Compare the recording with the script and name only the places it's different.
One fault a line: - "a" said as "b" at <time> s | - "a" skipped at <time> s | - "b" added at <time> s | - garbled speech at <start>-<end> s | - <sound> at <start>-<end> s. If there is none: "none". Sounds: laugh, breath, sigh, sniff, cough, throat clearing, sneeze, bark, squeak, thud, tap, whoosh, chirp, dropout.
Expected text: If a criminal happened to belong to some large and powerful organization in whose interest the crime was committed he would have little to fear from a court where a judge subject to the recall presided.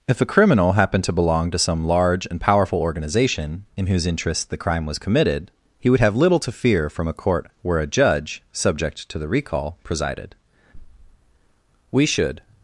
- "We should" added at 11.9 s